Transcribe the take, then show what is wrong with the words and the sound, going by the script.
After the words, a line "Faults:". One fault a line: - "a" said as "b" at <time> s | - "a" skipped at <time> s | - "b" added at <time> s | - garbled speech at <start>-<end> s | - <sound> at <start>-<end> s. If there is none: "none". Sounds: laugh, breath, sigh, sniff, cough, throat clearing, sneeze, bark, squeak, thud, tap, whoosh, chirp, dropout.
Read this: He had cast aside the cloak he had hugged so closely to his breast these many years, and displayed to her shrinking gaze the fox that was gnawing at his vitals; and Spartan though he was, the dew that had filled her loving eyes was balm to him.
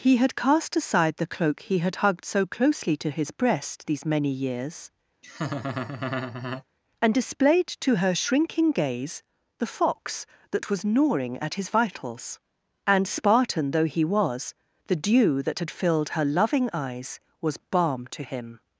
He had cast aside the cloak he had hugged so closely to his breast these many years, and displayed to her shrinking gaze the fox that was gnawing at his vitals; and Spartan though he was, the dew that had filled her loving eyes was balm to him.
Faults:
- laugh at 5.2-6.6 s